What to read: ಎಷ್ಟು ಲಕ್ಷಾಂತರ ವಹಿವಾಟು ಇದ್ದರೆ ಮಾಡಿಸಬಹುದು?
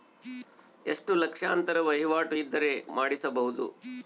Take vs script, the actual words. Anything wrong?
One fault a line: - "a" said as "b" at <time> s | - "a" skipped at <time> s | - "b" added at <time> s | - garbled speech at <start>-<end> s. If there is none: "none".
none